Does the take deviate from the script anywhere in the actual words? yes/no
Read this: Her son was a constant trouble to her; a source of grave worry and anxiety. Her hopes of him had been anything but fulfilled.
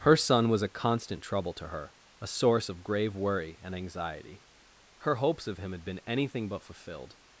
no